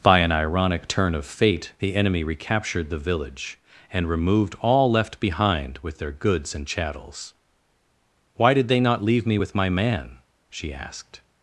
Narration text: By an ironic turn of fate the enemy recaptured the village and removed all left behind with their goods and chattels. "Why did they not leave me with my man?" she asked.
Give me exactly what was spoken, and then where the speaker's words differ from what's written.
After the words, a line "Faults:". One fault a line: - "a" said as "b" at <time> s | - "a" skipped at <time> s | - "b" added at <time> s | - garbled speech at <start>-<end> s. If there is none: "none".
By an ironic turn of fate the enemy recaptured the village and removed all left behind with their goods and chattels. "Why did they not leave me with my man?" she asked.
Faults:
none